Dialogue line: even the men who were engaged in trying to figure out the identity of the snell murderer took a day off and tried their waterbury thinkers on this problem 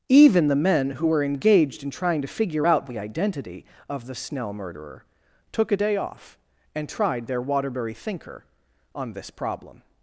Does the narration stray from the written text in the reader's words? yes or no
yes